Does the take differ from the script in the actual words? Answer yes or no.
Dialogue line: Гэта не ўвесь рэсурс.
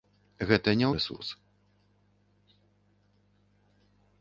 yes